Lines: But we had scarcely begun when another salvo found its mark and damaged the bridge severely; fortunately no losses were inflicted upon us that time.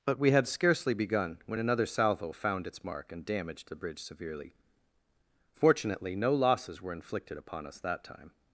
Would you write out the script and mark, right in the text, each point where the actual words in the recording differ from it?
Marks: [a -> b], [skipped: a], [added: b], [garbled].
But we had scarcely begun when another salvo found its mark and damaged the bridge severely; fortunately no losses were inflicted upon us that time.